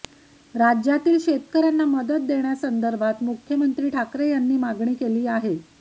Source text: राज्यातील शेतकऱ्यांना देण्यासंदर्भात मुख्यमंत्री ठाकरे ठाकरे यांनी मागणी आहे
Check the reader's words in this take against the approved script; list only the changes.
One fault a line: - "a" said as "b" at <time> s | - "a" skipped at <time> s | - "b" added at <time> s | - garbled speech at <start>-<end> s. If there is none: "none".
- "मदत" added at 1.9 s
- "ठाकरे" skipped at 4.3 s
- "केली" added at 5.0 s